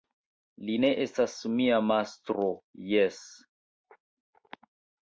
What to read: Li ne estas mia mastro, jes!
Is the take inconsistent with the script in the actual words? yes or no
no